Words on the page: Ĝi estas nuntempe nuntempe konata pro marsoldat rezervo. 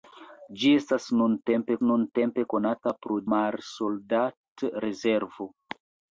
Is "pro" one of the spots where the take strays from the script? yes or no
no